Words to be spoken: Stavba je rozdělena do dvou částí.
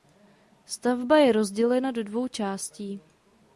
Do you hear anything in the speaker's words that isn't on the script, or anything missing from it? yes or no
no